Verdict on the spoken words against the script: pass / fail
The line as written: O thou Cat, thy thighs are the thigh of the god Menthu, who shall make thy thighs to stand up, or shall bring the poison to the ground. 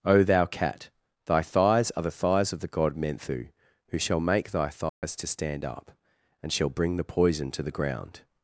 fail